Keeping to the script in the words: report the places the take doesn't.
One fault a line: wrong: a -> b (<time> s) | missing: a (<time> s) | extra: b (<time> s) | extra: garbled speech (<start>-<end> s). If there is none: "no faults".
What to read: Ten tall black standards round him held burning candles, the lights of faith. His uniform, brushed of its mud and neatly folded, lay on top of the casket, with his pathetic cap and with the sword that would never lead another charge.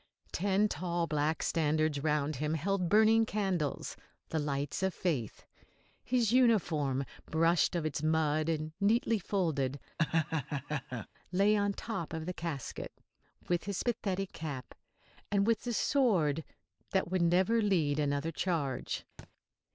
no faults